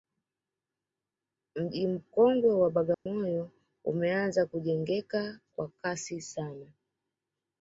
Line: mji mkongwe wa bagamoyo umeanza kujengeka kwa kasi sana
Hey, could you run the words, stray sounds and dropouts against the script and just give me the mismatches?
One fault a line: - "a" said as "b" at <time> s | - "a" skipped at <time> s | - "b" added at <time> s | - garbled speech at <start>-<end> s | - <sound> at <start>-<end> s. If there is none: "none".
- dropout at 2.9-3.1 s